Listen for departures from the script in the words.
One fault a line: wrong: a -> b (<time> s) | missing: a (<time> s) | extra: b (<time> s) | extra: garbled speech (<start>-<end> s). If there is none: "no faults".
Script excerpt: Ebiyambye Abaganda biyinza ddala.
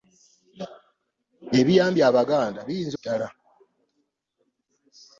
no faults